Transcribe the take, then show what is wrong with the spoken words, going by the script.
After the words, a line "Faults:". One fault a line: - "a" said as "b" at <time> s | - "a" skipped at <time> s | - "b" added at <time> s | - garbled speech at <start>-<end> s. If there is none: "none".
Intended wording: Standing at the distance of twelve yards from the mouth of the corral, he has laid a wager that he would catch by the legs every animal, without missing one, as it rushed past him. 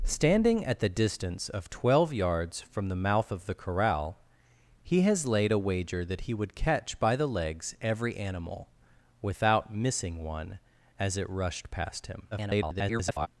Standing at the distance of twelve yards from the mouth of the corral, he has laid a wager that he would catch by the legs every animal, without missing one, as it rushed past him. [garbled]
Faults:
- garbled speech at 12.3-13.3 s